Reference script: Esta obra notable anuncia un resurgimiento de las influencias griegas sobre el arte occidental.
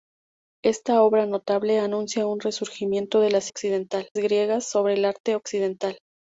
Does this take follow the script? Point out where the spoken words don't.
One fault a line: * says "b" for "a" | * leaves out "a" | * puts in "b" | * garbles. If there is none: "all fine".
* says "occidental" for "influencias"